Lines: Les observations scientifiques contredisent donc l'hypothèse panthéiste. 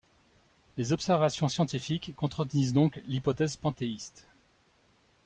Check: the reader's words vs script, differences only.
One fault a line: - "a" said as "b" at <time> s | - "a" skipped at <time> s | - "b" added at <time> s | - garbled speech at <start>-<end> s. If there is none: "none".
none